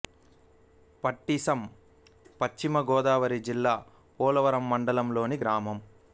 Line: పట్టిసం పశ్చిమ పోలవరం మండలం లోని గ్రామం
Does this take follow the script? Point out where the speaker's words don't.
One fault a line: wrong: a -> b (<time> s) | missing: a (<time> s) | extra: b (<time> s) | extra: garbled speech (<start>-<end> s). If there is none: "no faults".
extra: గోదావరి జిల్లా (2.9 s)